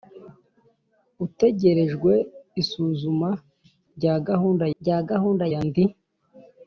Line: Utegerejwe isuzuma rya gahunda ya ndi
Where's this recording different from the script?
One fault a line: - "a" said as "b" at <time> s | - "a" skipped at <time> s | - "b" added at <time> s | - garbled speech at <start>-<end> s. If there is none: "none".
- "rya gahunda" added at 4.8 s